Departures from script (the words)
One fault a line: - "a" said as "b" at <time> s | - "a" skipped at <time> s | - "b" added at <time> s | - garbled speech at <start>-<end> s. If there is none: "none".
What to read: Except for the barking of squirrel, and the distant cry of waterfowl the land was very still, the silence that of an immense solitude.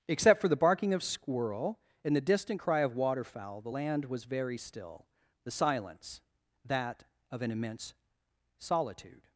none